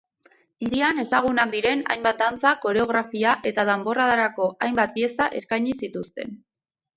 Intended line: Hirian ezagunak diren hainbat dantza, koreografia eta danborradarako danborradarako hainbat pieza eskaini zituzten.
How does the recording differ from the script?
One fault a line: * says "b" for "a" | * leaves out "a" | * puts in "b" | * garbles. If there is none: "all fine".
* leaves out "danborradarako"